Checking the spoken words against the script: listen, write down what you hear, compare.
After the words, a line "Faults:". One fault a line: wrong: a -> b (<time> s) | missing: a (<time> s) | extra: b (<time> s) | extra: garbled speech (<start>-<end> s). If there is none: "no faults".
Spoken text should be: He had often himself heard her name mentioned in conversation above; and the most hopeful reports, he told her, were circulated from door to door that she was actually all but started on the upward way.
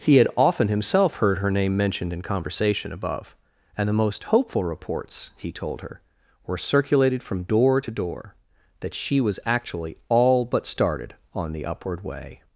He had often himself heard her name mentioned in conversation above; and the most hopeful reports, he told her, were circulated from door to door that she was actually all but started on the upward way.
Faults:
no faults